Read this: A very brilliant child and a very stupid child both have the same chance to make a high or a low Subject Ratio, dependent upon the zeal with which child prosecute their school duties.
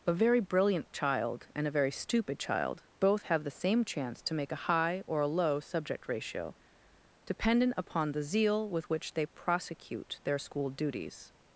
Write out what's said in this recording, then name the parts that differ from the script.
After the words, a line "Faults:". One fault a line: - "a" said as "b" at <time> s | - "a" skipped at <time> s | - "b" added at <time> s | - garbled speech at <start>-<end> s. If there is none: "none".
A very brilliant child and a very stupid child both have the same chance to make a high or a low Subject Ratio, dependent upon the zeal with which they prosecute their school duties.
Faults:
- "child" said as "they" at 9.1 s